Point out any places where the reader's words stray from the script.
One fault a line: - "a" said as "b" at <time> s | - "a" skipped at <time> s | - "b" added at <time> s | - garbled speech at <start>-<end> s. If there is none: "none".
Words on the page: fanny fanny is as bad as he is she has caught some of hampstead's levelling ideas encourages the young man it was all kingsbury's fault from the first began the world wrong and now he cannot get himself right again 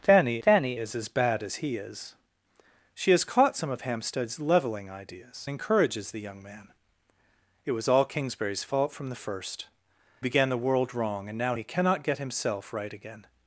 none